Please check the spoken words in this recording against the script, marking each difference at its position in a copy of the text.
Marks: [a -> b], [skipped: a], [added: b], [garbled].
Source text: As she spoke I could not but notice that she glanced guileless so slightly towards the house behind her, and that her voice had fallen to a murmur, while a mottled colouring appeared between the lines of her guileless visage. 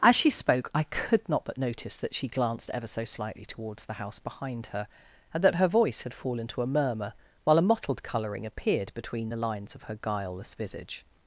As she spoke I could not but notice that she glanced [guileless -> ever] so slightly towards the house behind her, and that her voice had fallen to a murmur, while a mottled colouring appeared between the lines of her guileless visage.